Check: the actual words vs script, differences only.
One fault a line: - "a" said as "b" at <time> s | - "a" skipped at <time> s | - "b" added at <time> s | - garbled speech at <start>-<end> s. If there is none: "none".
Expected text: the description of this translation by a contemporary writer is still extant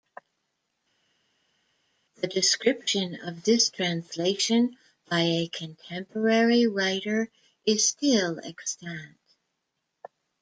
none